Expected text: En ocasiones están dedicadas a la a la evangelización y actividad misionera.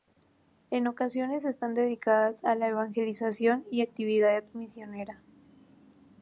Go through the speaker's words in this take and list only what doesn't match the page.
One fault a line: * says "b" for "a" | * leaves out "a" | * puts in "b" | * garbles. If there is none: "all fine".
* leaves out "a la"